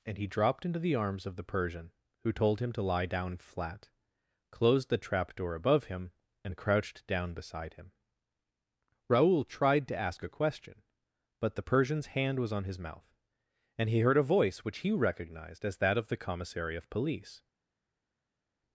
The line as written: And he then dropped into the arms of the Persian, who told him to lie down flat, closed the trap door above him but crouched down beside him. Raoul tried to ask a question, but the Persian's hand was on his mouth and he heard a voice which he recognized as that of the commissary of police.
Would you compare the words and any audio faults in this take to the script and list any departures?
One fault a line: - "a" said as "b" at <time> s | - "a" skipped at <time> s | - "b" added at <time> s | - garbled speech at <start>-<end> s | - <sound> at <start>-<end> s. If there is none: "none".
- "then" skipped at 0.3 s
- "but" said as "and" at 6.4 s